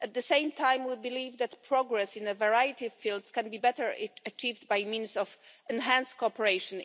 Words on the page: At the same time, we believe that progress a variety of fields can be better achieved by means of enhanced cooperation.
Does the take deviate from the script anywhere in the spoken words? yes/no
yes